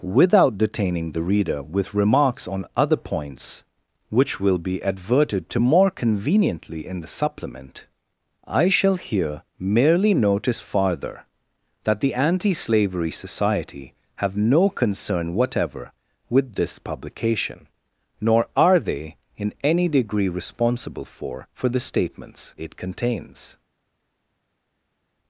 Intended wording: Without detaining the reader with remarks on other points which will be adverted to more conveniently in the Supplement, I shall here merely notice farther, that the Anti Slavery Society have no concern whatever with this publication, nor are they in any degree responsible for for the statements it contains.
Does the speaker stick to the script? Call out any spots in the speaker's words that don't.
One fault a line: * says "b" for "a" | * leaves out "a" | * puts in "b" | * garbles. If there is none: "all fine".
all fine